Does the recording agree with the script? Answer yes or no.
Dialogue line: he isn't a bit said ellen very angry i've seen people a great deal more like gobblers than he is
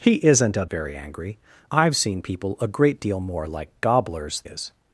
no